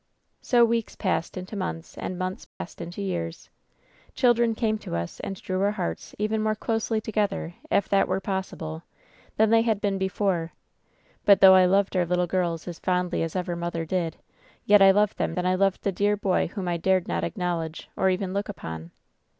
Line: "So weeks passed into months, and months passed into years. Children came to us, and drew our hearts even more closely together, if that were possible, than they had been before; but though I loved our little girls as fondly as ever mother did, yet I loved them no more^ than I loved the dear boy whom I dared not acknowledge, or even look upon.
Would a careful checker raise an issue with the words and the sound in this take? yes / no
yes